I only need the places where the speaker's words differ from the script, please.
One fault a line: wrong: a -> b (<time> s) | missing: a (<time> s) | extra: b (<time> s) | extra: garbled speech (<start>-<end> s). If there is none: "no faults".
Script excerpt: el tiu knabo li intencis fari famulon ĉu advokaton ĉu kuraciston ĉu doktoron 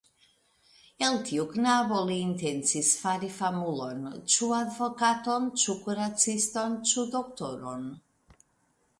no faults